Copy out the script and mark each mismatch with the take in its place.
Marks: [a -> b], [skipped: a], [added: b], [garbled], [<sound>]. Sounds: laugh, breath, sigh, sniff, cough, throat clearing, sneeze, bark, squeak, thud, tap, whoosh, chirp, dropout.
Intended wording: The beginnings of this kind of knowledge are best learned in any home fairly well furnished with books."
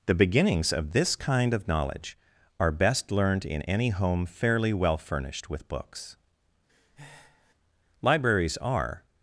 The beginnings of this kind of knowledge are best learned in any home fairly well furnished with books." [breath] [added: Libraries are]